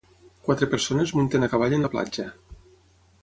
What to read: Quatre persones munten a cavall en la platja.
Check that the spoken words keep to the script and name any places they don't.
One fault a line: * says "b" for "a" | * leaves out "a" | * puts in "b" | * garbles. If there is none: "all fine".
all fine